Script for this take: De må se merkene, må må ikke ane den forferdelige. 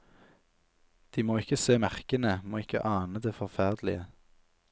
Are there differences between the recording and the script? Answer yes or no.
yes